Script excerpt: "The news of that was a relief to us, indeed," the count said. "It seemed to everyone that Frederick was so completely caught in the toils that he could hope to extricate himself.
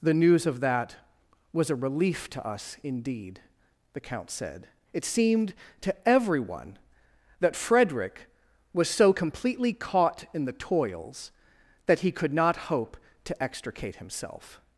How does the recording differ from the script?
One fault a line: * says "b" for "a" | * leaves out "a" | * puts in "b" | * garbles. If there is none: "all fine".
* puts in "not"